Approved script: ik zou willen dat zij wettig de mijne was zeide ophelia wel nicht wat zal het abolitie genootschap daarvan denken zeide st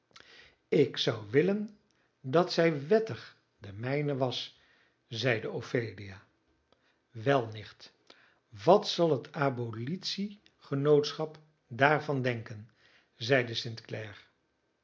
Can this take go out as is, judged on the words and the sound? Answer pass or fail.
pass